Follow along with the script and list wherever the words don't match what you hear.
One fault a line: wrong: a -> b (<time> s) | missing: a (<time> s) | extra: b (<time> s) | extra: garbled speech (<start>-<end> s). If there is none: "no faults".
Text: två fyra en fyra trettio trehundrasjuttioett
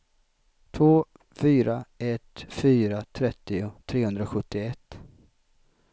wrong: en -> ett (2.0 s)